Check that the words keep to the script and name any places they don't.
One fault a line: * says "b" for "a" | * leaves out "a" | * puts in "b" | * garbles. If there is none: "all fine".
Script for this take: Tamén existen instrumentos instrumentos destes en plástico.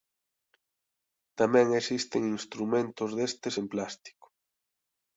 * leaves out "instrumentos"